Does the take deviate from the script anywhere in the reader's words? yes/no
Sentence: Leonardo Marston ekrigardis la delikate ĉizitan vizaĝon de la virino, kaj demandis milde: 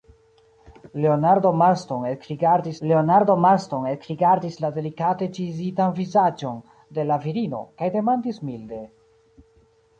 yes